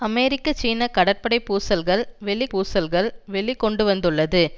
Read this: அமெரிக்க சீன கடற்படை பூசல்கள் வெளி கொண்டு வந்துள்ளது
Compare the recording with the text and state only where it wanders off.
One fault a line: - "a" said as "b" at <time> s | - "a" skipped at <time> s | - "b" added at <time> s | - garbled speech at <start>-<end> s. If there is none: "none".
- "பூசல்கள் வெளி" added at 2.5 s